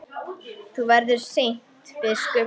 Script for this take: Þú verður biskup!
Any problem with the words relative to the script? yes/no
yes